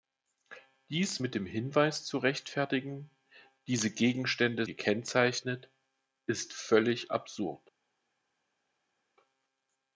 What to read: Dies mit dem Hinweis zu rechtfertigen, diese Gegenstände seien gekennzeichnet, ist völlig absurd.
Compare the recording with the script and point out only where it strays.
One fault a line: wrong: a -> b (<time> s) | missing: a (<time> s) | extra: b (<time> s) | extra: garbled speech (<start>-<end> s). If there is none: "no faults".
missing: seien (4.6 s)